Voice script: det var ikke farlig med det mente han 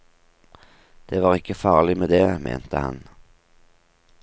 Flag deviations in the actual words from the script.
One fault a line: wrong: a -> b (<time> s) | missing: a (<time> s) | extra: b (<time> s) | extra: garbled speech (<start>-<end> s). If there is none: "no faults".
no faults